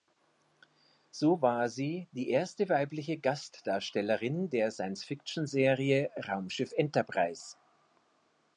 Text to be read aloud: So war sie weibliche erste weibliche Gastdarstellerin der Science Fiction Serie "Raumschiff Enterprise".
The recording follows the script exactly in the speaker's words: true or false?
false